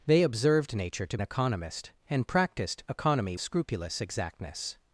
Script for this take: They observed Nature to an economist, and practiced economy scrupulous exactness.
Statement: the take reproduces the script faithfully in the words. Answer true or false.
true